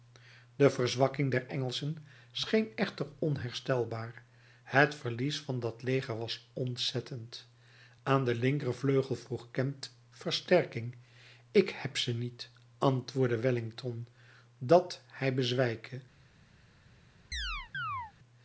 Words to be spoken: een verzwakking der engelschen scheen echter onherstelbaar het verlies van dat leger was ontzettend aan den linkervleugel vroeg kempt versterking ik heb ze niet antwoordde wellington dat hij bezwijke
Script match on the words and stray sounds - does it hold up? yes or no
no